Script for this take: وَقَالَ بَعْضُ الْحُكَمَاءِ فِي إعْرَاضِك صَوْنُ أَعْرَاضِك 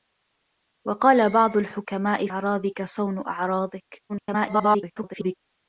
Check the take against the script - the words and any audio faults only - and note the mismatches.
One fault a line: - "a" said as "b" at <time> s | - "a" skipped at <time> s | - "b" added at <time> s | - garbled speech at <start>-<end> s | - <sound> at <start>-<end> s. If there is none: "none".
- "فِي" skipped at 2.3 s
- garbled speech at 4.1-5.4 s